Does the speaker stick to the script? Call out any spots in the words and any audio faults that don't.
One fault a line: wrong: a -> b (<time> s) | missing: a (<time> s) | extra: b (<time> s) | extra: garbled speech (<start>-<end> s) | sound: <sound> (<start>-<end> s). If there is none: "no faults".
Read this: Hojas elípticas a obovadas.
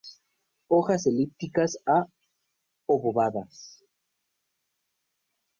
no faults